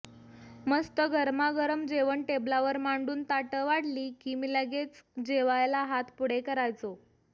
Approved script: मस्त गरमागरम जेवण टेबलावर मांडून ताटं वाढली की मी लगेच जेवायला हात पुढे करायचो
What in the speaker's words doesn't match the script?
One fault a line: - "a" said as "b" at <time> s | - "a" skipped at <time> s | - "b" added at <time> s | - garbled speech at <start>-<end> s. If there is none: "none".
none